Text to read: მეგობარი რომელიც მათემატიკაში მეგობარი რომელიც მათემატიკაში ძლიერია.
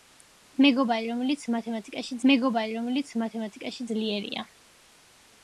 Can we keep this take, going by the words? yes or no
yes